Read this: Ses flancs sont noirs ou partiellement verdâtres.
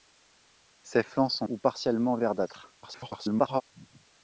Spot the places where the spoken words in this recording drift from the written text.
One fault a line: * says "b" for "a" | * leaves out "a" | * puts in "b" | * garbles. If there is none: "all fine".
* leaves out "noirs"
* garbles